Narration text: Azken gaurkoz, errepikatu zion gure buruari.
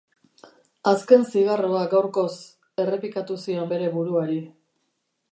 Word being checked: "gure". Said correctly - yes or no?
no